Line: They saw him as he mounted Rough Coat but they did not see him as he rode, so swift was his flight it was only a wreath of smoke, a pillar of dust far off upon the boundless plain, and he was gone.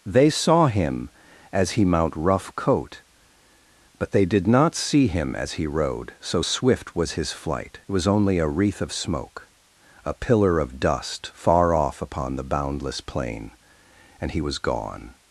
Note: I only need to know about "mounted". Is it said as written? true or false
false